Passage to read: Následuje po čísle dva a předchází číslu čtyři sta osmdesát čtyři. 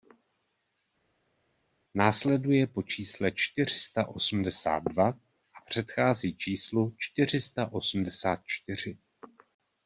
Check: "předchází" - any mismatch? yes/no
no